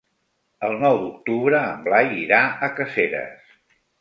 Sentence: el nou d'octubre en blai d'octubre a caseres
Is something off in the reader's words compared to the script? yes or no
yes